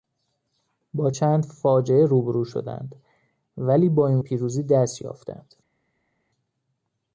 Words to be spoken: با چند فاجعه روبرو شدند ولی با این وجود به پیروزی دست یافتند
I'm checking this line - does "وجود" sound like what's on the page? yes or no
no